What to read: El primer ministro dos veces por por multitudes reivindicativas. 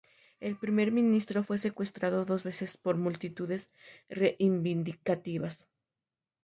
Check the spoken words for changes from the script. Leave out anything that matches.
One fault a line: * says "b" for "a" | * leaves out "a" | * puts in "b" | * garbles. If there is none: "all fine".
* puts in "fue secuestrado"
* leaves out "por"